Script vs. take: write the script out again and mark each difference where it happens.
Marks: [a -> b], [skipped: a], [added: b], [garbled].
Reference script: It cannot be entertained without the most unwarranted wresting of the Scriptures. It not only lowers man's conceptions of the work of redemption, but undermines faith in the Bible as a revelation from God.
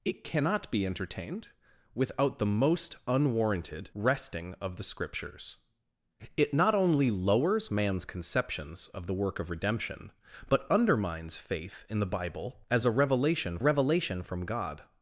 It cannot be entertained without the most unwarranted wresting of the Scriptures. It not only lowers man's conceptions of the work of redemption, but undermines faith in the Bible as a revelation [added: revelation] from God.